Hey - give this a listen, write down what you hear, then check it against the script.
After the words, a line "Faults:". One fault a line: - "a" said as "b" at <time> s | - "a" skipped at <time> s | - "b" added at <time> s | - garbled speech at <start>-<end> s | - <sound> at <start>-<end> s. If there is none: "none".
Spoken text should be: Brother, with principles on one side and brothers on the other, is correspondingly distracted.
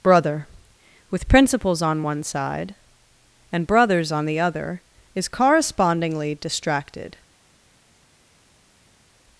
Brother, with principles on one side and brothers on the other, is correspondingly distracted.
Faults:
none